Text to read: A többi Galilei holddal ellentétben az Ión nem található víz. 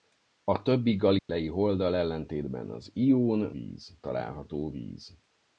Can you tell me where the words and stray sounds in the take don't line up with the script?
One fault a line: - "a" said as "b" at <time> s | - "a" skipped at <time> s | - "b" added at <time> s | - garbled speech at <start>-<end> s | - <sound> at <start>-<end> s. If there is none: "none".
- dropout at 1.2-1.3 s
- "nem" said as "víz" at 3.5 s